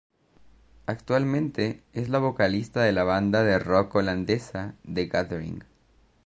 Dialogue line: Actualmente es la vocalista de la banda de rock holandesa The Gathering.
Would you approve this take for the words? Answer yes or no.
yes